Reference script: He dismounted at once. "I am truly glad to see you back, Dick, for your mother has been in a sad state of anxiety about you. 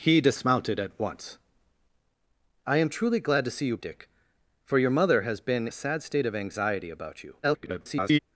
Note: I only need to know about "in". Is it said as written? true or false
false